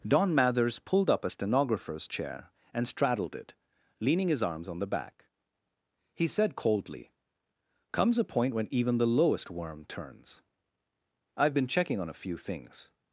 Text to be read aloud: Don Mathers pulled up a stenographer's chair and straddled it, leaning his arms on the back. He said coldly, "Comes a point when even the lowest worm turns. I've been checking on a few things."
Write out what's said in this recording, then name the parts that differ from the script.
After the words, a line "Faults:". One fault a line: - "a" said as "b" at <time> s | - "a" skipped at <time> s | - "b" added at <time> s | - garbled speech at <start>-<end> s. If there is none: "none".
Don Mathers pulled up a stenographer's chair and straddled it, leaning his arms on the back. He said coldly, "Comes a point when even the lowest worm turns. I've been checking on a few things."
Faults:
none